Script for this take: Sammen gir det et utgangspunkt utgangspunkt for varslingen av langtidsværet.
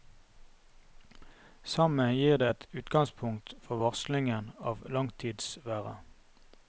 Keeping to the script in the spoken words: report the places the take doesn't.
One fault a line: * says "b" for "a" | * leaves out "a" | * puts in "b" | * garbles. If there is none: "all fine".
* leaves out "utgangspunkt"